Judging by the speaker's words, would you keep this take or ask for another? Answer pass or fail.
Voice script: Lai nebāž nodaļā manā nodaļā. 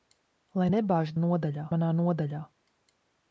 pass